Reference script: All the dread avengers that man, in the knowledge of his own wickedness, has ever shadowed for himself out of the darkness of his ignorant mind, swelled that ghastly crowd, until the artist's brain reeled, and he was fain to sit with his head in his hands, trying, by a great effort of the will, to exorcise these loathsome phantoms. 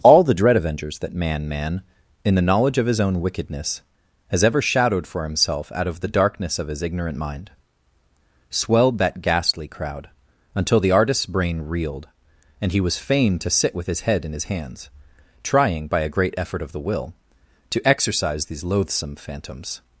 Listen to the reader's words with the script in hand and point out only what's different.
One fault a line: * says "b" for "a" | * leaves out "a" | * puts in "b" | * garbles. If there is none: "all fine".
* puts in "man"